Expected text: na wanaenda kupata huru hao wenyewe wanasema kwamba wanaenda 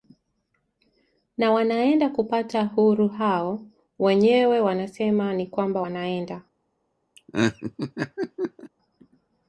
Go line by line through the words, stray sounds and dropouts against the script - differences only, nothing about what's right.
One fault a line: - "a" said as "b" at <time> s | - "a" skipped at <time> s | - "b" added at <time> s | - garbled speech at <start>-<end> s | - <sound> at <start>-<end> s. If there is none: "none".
- "ni" added at 5.3 s
- laugh at 7.2-8.7 s